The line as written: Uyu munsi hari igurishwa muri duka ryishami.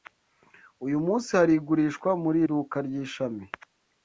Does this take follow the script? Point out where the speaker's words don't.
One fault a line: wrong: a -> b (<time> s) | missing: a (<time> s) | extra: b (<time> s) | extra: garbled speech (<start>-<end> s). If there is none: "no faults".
no faults